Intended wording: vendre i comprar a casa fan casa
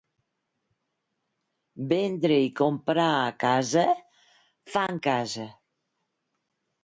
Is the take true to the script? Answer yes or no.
yes